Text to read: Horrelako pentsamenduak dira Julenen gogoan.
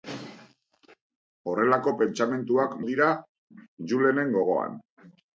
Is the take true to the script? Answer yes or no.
yes